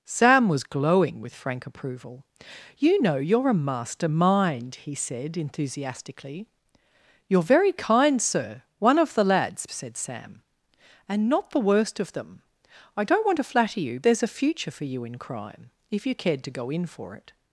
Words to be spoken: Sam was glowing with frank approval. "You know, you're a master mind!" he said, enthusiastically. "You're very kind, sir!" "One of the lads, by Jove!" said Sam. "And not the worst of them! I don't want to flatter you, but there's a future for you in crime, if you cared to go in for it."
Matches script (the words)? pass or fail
fail